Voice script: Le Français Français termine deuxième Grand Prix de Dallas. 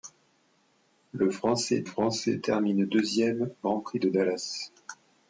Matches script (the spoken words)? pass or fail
pass